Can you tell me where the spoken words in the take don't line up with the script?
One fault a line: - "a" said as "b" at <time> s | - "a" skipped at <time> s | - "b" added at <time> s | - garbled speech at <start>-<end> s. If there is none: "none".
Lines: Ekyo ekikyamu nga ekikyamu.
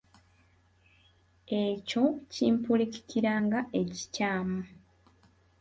- "ekikyamu" said as "kimpulikikira" at 2.3 s